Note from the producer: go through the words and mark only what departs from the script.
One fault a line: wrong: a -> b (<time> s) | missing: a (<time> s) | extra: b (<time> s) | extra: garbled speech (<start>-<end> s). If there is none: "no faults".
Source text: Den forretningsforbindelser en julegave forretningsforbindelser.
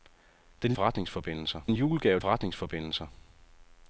no faults